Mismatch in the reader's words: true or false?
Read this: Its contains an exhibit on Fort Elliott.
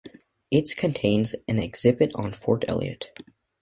false